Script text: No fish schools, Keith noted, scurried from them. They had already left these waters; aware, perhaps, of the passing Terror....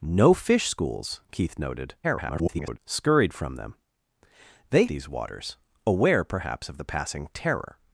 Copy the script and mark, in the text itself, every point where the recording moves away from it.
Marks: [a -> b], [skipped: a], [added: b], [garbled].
No fish schools, Keith noted, [garbled] scurried from them. They [skipped: had already left] these waters; aware, perhaps, of the passing Terror....